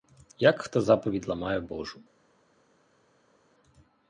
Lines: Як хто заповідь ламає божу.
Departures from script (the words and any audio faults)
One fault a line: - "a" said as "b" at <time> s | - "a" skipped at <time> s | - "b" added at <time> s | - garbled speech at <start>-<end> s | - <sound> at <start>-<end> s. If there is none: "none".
none